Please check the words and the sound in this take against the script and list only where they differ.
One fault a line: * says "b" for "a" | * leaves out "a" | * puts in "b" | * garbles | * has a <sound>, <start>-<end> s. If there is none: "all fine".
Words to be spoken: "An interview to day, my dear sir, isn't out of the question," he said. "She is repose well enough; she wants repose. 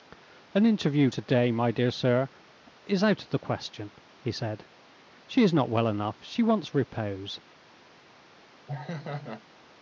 * says "is" for "isn't"
* says "not" for "repose"
* has a laugh, 8.7-9.4 s